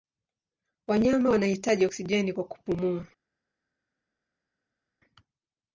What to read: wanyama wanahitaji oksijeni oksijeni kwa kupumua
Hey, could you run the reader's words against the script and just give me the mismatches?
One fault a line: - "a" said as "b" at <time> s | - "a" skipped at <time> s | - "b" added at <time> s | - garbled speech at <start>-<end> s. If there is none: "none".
- "oksijeni" skipped at 2.3 s